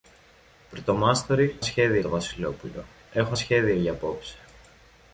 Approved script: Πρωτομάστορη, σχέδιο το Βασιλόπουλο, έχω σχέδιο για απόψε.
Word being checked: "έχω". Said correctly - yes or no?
yes